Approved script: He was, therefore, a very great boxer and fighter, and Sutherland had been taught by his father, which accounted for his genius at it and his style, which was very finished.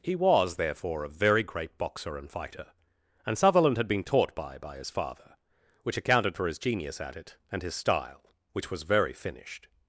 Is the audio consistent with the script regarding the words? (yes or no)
no